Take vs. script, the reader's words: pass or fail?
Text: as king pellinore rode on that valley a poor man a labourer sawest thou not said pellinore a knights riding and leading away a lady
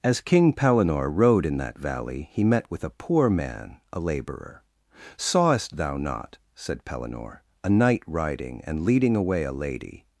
fail